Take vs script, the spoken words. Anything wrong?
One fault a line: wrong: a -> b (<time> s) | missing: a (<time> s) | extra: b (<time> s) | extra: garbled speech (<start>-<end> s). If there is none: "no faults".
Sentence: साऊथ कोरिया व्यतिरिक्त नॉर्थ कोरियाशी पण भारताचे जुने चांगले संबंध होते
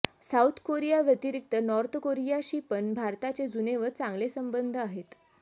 extra: व (3.8 s)
wrong: होते -> आहेत (4.8 s)